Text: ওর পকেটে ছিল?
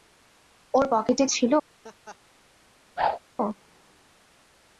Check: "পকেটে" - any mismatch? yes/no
no